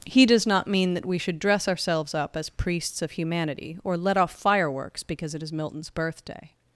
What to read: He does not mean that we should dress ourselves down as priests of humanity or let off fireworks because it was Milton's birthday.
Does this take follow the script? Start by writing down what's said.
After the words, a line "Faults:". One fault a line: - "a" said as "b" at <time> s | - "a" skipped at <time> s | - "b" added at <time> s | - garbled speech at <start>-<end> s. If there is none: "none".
He does not mean that we should dress ourselves up as priests of humanity or let off fireworks because it is Milton's birthday.
Faults:
- "down" said as "up" at 2.1 s
- "was" said as "is" at 5.4 s